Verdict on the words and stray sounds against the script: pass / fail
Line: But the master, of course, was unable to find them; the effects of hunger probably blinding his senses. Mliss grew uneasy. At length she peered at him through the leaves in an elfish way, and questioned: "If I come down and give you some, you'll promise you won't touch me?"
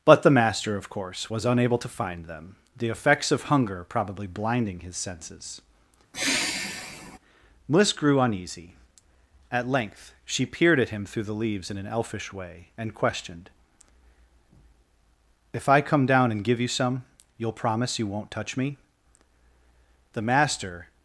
fail